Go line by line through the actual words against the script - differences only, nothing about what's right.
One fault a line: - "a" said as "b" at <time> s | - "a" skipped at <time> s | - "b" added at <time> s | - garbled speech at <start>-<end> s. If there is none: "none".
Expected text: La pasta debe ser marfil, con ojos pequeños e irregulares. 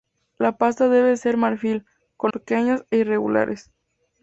- "ojos" skipped at 2.3 s